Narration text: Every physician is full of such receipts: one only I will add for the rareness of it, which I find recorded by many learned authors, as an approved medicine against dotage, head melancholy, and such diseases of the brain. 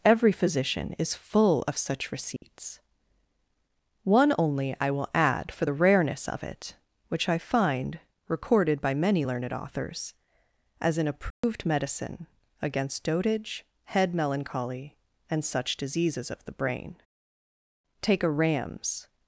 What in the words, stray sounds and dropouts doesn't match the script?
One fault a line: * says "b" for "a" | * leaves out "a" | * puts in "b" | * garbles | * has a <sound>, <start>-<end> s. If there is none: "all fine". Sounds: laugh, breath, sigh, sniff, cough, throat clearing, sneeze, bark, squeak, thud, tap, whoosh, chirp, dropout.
* has a dropout, 2.4-2.4 s
* has a dropout, 11.3-11.4 s
* puts in "Take a ram's"